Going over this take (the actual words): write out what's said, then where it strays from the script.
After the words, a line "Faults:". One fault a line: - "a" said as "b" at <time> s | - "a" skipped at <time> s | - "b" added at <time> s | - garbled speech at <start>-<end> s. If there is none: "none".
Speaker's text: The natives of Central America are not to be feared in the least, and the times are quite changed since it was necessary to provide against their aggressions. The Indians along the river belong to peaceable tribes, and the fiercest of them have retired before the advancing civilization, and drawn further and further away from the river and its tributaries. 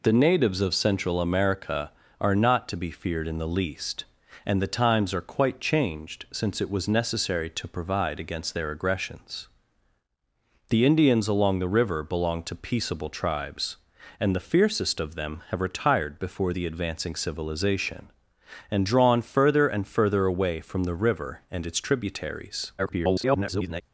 The natives of Central America are not to be feared in the least, and the times are quite changed since it was necessary to provide against their aggressions. The Indians along the river belong to peaceable tribes, and the fiercest of them have retired before the advancing civilization, and drawn further and further away from the river and its tributaries. [garbled]
Faults:
- garbled speech at 22.8-23.8 s